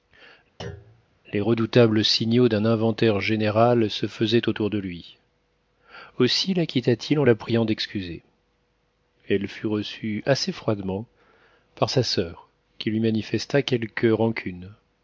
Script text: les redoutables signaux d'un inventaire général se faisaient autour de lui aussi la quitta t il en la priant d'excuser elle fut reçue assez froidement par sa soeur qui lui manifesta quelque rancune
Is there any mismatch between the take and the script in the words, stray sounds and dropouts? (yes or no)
yes